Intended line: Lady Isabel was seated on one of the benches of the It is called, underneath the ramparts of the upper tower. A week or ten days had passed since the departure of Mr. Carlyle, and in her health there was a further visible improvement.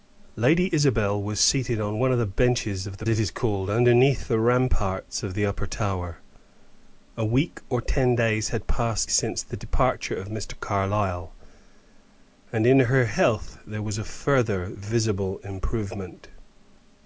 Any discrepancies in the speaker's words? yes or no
no